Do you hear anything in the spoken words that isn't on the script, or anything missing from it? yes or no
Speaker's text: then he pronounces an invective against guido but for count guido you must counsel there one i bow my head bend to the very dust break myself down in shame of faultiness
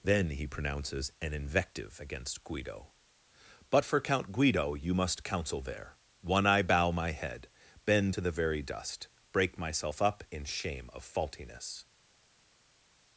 yes